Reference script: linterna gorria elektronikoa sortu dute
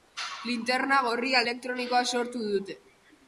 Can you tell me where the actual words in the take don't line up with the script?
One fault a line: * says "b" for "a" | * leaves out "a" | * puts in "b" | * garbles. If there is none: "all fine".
all fine